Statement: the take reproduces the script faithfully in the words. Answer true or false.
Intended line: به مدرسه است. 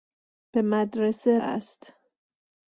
true